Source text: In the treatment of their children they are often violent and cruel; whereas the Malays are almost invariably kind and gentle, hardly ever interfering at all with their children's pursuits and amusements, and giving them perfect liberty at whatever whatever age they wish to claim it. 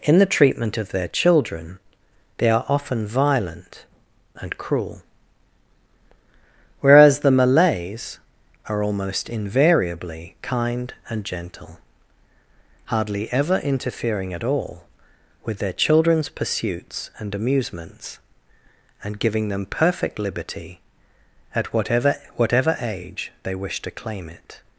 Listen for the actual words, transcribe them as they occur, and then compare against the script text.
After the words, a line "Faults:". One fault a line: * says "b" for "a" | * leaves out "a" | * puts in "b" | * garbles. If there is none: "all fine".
In the treatment of their children they are often violent and cruel; whereas the Malays are almost invariably kind and gentle, hardly ever interfering at all with their children's pursuits and amusements, and giving them perfect liberty at whatever whatever age they wish to claim it.
Faults:
all fine